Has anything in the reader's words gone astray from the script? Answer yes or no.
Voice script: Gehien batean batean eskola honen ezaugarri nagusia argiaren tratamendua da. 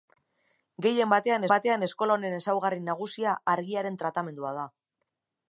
no